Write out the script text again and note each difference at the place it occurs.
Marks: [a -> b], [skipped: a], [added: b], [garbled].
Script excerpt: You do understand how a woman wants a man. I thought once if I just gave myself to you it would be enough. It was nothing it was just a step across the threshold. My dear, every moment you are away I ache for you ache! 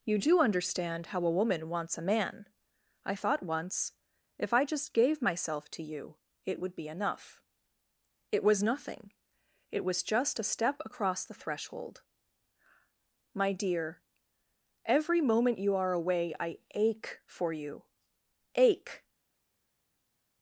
You do understand how a woman wants a man. I thought once if I just gave myself to you it would be enough. It was nothing it was just a step across the threshold. My dear, every moment you are away I ache for you ache!